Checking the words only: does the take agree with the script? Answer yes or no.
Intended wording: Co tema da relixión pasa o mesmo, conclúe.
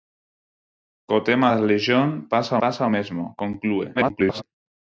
no